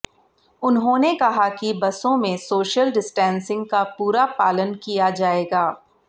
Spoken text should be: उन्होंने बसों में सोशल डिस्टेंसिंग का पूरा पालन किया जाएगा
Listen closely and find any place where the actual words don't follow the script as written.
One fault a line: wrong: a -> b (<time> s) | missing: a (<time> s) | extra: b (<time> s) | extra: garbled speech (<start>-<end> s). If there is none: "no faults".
extra: कहा कि (1.1 s)